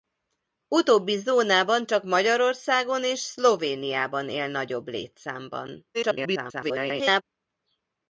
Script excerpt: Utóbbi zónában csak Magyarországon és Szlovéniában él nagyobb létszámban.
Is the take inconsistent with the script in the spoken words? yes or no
yes